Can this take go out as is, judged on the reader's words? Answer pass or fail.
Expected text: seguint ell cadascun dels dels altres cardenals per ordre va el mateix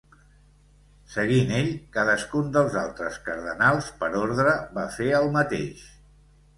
fail